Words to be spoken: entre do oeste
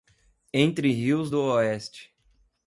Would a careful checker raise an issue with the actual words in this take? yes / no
yes